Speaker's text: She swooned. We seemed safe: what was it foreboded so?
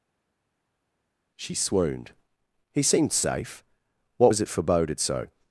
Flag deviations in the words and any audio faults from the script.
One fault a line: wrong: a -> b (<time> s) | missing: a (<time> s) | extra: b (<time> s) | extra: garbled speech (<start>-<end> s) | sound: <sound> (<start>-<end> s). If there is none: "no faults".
wrong: We -> He (2.7 s)